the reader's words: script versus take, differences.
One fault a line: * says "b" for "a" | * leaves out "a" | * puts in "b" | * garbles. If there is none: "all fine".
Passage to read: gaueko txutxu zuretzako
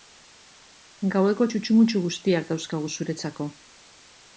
* puts in "mutxu guztiak dauzkagu"